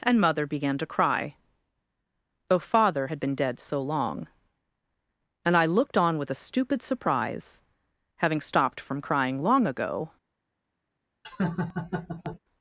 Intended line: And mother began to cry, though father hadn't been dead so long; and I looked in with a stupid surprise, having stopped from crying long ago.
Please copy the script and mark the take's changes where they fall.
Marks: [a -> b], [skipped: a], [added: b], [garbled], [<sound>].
And mother began to cry, though father [hadn't -> had] been dead so long; and I looked [in -> on] with a stupid surprise, having stopped from crying long ago. [laugh]